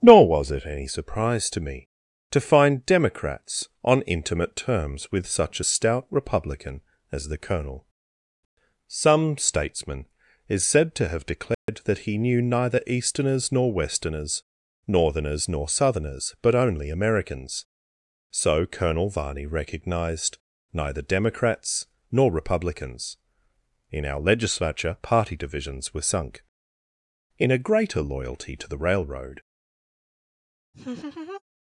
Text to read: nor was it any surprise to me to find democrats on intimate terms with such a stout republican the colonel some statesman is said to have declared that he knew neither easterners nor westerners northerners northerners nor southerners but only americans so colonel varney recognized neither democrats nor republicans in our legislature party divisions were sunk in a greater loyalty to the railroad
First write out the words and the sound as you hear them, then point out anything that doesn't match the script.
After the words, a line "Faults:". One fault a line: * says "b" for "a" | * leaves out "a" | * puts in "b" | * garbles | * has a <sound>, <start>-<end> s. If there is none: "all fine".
nor was it any surprise to me to find democrats on intimate terms with such a stout republican as the colonel some statesman is said to have declared that he knew neither easterners nor westerners northerners nor southerners but only americans so colonel varney recognized neither democrats nor republicans in our legislature party divisions were sunk in a greater loyalty to the railroad
Faults:
* puts in "as"
* has a dropout, 11.5-11.7 s
* leaves out "northerners"
* has a laugh, 30.7-31.4 s